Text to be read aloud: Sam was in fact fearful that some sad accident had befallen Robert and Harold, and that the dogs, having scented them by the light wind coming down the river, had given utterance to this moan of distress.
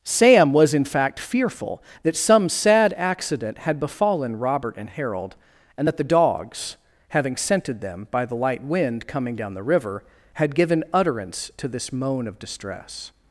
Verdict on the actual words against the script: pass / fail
pass